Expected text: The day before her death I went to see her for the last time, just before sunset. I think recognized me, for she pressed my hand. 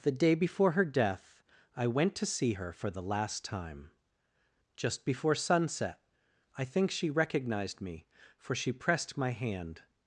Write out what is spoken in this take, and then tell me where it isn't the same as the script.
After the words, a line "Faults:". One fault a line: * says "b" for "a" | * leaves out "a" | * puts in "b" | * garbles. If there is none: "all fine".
The day before her death I went to see her for the last time, just before sunset. I think she recognized me, for she pressed my hand.
Faults:
* puts in "she"